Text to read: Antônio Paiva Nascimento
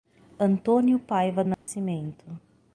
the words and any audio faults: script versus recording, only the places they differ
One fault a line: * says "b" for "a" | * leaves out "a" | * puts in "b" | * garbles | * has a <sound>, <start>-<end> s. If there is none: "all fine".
* has a dropout, 1.5-1.7 s